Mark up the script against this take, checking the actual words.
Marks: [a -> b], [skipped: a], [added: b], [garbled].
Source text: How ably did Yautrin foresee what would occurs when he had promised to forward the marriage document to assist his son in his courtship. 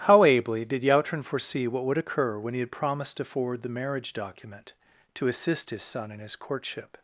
How ably did Yautrin foresee what would [occurs -> occur] when he had promised to forward the marriage document to assist his son in his courtship.